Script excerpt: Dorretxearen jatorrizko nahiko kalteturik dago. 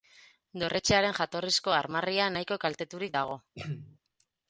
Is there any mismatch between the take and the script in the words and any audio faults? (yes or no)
yes